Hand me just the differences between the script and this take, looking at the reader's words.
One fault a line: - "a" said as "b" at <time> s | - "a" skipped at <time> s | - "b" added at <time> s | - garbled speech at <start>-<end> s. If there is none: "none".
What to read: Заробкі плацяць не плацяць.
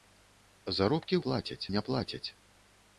none